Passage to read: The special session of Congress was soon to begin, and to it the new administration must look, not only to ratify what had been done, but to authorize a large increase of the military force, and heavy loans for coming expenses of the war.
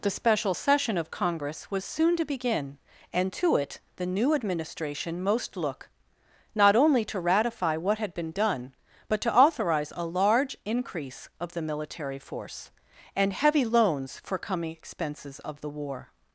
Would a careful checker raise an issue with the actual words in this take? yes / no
yes